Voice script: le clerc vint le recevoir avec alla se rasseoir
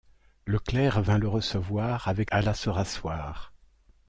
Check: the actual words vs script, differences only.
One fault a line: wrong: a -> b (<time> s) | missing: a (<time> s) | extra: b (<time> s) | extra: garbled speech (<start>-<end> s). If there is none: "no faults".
no faults